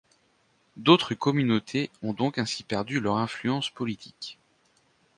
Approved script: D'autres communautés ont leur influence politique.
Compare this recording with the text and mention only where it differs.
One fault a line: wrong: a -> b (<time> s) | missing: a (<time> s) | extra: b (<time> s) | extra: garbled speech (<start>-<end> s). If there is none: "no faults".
extra: donc ainsi perdu (2.1 s)